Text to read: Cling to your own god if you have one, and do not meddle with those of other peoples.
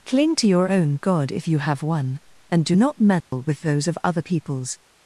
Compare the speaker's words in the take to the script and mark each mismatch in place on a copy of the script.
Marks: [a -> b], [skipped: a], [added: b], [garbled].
Cling to your own god if you have one, and do not meddle with those of other peoples.